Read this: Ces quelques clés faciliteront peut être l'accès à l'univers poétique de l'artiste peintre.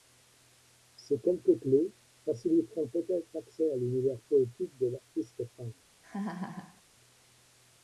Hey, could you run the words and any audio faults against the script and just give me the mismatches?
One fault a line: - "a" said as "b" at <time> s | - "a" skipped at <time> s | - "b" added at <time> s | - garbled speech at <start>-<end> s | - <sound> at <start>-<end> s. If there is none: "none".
- laugh at 6.0-6.8 s